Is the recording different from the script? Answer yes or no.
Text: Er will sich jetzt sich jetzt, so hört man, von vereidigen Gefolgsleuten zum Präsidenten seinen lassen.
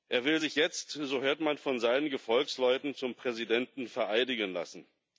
yes